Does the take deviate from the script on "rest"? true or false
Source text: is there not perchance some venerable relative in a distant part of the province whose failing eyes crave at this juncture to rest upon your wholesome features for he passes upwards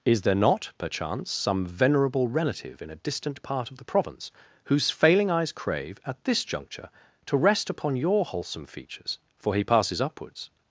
false